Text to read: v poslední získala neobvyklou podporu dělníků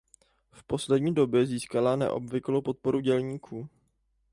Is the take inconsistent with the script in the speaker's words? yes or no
yes